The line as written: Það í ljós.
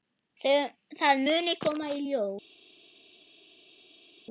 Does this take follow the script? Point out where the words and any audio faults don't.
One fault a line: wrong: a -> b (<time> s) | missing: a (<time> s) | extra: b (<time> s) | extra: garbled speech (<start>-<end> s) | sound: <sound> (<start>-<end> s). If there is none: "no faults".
extra: muni koma (1.2 s)